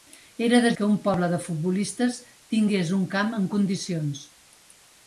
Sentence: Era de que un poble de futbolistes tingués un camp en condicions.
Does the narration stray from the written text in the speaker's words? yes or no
no